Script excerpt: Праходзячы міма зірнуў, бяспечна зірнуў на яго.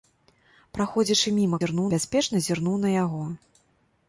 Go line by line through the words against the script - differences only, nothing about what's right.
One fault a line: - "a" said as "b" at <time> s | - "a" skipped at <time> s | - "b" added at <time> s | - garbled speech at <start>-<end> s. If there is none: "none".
none